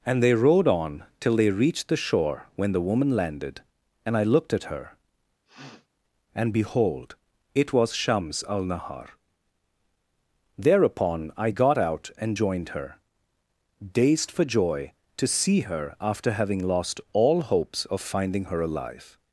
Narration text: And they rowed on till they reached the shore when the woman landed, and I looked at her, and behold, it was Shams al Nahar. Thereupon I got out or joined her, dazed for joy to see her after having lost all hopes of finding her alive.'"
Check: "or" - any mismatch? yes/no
yes